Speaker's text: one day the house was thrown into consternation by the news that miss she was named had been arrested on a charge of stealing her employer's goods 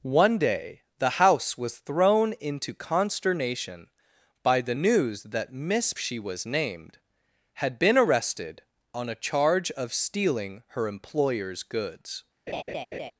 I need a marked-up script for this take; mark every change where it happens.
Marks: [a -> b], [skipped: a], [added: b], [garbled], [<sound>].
one day the house was thrown into consternation by the news that miss she was named had been arrested on a charge of stealing her employer's goods [laugh]